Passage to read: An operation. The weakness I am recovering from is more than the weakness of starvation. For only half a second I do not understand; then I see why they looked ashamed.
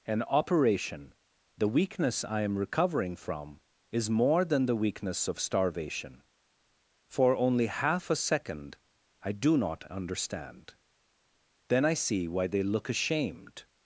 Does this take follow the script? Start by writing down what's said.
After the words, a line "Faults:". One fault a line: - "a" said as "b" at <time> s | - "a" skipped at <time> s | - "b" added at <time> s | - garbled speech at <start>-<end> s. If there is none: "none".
An operation. The weakness I am recovering from is more than the weakness of starvation. For only half a second I do not understand; then I see why they look ashamed.
Faults:
- "looked" said as "look" at 12.6 s